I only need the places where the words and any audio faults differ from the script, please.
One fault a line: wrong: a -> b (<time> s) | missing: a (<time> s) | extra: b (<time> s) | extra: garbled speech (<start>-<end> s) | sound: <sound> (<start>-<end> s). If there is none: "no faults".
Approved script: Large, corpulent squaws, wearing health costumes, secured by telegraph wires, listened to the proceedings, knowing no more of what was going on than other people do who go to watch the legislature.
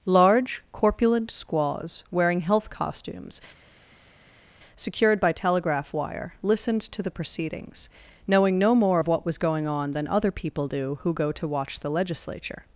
wrong: wires -> wire (5.9 s)